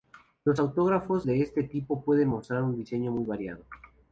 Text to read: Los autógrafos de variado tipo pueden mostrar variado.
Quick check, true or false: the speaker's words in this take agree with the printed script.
false